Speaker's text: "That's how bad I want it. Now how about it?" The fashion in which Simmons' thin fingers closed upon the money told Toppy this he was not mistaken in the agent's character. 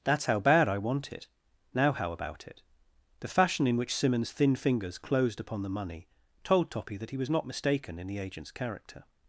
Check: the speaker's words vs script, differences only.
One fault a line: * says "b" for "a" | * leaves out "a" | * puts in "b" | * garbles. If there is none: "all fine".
* says "that" for "this"